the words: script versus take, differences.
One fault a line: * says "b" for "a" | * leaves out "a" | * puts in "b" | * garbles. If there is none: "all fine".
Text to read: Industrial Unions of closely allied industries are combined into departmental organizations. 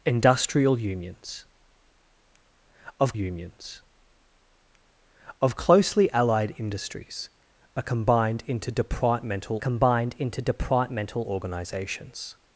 * puts in "Unions of"
* puts in "combined into departmental"